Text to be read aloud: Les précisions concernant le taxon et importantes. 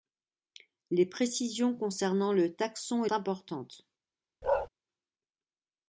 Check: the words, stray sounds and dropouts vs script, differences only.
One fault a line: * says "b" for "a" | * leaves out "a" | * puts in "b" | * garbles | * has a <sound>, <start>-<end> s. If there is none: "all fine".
* has a bark, 4.4-4.7 s